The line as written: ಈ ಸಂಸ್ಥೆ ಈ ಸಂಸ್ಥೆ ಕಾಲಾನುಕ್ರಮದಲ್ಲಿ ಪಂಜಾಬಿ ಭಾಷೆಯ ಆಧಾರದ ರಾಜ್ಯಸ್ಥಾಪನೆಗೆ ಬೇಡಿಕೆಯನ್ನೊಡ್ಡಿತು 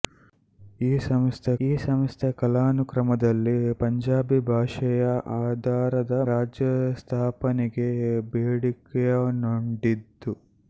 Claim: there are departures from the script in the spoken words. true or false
false